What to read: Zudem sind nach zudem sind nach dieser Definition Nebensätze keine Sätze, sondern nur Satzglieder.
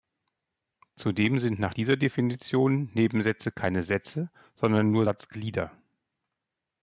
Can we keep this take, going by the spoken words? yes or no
no